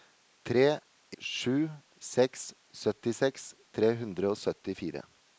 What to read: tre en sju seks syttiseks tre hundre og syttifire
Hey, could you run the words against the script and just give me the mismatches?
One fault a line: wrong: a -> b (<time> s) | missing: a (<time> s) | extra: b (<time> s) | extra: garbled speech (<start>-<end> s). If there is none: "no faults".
missing: en (0.8 s)